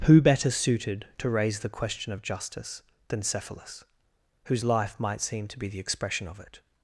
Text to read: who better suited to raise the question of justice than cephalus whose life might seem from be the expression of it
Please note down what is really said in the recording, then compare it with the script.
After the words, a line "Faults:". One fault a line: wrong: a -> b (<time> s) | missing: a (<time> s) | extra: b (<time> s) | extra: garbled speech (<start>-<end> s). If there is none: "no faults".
who better suited to raise the question of justice than cephalus whose life might seem to be the expression of it
Faults:
wrong: from -> to (5.5 s)